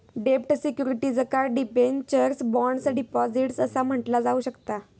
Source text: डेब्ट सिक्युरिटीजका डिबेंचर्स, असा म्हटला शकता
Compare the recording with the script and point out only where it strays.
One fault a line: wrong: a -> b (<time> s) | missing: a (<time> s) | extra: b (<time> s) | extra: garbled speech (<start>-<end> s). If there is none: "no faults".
extra: बॉण्ड्स डिपॉझिट्स (2.4 s)
extra: जाऊ (4.2 s)